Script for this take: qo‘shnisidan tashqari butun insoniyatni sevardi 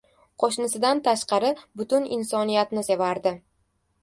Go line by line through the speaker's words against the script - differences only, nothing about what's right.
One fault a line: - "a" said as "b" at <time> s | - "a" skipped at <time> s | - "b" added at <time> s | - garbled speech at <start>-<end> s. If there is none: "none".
none